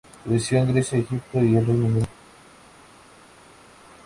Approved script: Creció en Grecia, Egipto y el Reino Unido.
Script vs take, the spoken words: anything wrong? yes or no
no